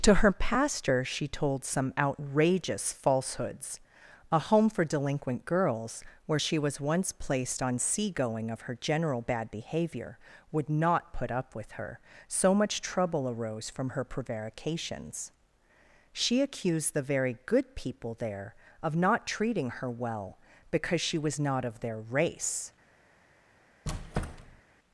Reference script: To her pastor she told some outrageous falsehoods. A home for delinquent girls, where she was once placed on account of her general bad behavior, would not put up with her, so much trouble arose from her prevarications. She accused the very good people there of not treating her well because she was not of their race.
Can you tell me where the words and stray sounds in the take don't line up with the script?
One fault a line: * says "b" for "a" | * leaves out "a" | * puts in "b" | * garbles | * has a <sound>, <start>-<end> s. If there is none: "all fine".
* says "seagoing" for "account"
* has a squeak, 23.8-24.6 s